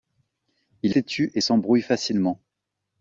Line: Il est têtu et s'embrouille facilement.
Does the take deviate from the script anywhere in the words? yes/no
yes